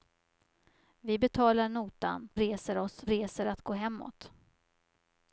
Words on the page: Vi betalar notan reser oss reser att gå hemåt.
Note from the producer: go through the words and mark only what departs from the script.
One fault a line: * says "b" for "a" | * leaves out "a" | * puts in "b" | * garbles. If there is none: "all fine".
all fine